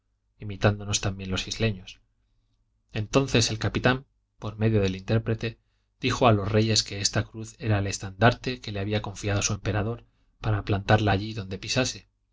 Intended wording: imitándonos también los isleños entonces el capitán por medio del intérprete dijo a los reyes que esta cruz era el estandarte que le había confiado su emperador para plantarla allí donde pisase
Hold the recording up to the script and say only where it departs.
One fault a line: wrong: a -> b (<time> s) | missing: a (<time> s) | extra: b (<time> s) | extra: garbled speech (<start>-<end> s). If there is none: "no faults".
no faults